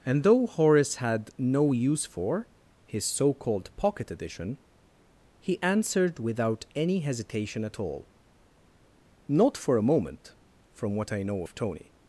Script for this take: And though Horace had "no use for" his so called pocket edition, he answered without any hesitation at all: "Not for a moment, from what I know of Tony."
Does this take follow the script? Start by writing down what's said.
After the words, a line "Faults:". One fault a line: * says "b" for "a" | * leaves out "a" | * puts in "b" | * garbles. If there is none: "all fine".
And though Horace had "no use for" his so called pocket edition, he answered without any hesitation at all: "Not for a moment, from what I know of Tony."
Faults:
all fine